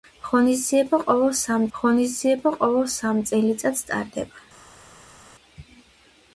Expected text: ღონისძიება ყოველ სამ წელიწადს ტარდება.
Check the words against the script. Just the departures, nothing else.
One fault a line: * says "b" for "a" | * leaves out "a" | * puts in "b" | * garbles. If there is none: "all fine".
* puts in "ღონისძიება ყოველ სამ"